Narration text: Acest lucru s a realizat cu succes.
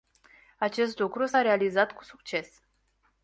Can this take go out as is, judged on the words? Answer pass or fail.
pass